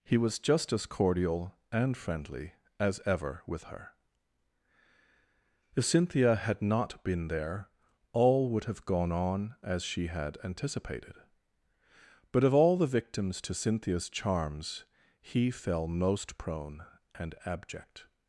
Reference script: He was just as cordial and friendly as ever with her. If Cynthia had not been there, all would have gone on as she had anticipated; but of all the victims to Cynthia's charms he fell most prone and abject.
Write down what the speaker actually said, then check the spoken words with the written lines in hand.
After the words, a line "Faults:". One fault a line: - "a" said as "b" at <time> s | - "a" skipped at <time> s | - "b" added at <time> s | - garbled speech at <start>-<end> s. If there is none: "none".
He was just as cordial and friendly as ever with her. If Cynthia had not been there, all would have gone on as she had anticipated; but of all the victims to Cynthia's charms he fell most prone and abject.
Faults:
none